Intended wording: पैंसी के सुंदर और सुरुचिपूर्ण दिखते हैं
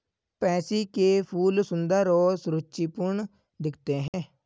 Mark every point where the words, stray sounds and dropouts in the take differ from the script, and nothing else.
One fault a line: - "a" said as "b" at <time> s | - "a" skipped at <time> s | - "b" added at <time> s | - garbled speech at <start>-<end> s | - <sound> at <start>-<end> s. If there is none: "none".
- "फूल" added at 1.2 s
- dropout at 4.1-4.1 s